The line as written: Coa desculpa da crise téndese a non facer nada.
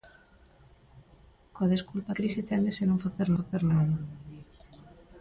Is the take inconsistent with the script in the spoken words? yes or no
yes